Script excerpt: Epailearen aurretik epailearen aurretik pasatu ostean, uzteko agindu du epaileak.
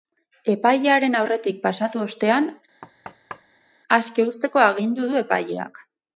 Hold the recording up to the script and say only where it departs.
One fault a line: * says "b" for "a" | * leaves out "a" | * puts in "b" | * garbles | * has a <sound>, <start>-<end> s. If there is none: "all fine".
* leaves out "epailearen aurretik"
* has a thud, 2.8-3.7 s
* puts in "aske"